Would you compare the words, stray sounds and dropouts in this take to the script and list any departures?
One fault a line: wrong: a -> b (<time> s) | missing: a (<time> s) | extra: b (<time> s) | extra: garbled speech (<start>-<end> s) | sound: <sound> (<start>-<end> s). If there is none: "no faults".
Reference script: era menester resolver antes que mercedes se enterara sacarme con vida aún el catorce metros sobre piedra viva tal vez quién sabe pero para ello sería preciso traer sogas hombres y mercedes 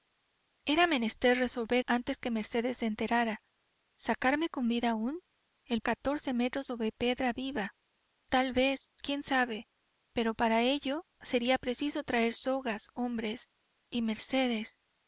no faults